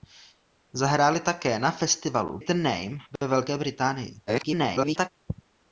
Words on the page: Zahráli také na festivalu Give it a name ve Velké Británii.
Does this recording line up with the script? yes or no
no